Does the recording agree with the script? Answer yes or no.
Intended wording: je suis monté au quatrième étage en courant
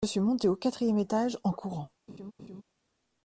yes